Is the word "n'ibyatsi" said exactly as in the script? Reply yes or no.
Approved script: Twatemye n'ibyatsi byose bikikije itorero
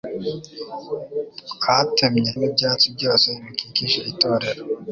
yes